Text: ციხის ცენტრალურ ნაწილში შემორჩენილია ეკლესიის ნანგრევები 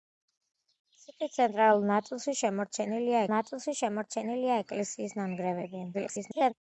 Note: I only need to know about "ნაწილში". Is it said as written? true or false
true